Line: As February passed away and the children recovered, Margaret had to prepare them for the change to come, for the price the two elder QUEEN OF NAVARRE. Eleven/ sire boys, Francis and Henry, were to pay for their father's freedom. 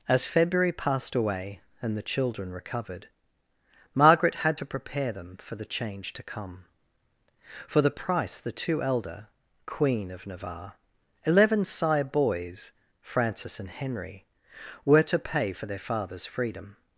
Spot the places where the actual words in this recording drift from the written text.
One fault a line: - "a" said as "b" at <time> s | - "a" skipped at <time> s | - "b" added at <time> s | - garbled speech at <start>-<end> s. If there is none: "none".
none